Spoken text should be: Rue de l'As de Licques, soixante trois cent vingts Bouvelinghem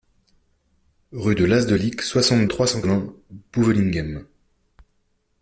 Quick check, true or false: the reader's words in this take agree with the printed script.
true